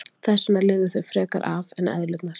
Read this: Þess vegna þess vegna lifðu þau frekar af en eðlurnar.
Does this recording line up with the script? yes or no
no